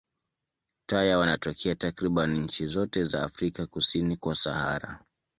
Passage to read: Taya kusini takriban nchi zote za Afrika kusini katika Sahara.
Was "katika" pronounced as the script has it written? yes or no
no